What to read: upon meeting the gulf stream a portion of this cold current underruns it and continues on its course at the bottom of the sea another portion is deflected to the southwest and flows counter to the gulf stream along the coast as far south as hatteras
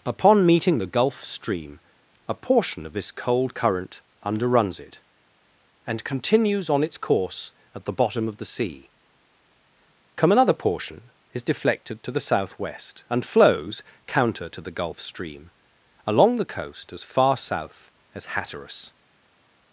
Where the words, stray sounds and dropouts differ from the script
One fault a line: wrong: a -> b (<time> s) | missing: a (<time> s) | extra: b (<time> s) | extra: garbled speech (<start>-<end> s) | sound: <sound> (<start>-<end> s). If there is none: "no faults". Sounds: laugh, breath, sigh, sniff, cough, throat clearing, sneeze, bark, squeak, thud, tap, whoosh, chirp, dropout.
extra: come (10.2 s)